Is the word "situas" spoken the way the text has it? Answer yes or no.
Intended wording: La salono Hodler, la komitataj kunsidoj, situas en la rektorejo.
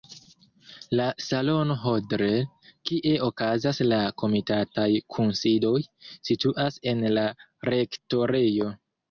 yes